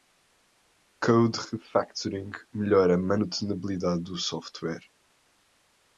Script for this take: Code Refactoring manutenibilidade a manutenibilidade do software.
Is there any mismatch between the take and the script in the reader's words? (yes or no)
yes